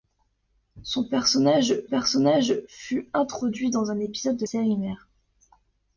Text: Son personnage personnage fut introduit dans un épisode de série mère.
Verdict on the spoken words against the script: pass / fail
pass